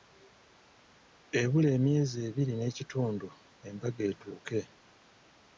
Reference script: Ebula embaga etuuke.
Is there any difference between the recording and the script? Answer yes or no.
yes